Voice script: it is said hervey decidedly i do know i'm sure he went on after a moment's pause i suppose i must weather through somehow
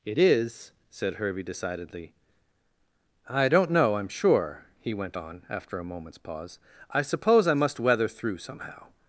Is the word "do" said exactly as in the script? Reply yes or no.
no